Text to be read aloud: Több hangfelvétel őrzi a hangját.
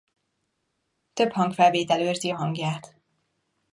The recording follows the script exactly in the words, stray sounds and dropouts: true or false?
true